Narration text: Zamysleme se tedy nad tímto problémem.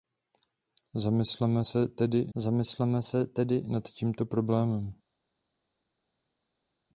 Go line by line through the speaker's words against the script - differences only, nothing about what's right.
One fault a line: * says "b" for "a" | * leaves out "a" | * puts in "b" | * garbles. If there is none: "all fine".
* puts in "zamysleme se tedy"